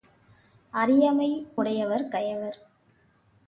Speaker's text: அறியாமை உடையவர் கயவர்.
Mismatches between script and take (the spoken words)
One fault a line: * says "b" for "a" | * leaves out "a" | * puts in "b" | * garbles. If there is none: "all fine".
all fine